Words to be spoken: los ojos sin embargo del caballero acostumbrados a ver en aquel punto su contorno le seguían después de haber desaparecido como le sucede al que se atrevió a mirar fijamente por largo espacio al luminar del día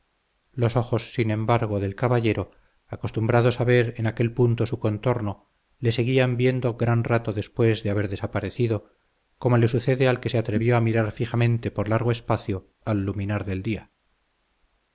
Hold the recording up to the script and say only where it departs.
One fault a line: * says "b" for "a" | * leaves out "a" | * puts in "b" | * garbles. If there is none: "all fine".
* puts in "viendo gran rato"